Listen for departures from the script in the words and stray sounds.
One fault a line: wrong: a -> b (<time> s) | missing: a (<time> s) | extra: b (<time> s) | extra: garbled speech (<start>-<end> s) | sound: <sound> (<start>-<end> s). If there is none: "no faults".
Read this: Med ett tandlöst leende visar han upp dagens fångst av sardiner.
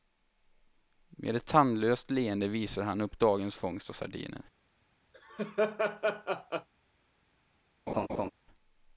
sound: laugh (5.1-6.7 s)
sound: laugh (7.9-8.3 s)